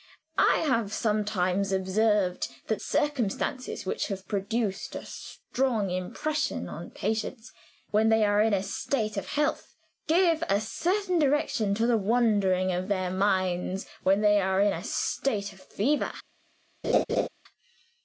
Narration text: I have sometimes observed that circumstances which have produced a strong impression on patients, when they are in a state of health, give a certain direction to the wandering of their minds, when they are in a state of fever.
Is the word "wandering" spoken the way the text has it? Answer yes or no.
yes